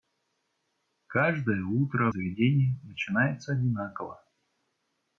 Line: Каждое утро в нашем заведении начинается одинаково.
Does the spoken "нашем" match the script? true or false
false